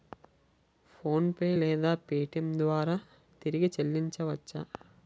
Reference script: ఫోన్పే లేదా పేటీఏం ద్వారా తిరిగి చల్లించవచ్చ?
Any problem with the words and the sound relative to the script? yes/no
no